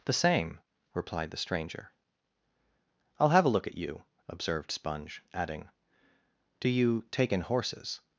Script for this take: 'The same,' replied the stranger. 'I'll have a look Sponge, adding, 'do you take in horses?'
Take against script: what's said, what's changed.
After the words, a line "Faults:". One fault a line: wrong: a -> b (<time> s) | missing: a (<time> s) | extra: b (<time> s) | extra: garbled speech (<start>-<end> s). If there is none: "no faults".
'The same,' replied the stranger. 'I'll have a look at you,' observed Sponge, adding, 'do you take in horses?'
Faults:
extra: at you observed (3.7 s)